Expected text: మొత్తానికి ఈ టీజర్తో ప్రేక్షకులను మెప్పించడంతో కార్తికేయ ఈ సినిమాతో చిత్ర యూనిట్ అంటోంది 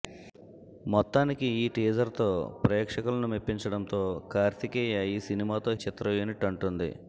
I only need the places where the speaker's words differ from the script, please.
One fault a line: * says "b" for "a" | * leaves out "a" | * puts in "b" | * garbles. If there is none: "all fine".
all fine